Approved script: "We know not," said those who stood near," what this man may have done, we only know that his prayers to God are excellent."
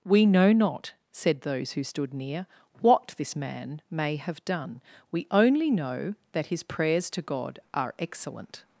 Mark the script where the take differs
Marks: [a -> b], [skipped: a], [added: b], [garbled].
"We know not," said those who stood near," what this man may have done, we only know that his prayers to God are excellent."